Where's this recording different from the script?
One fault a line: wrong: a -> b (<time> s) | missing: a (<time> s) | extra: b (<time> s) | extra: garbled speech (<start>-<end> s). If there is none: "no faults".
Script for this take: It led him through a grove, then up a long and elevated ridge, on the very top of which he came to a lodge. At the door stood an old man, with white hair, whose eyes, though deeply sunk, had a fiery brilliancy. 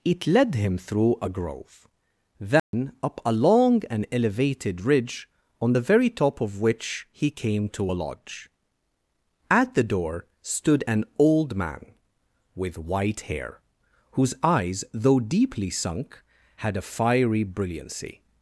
no faults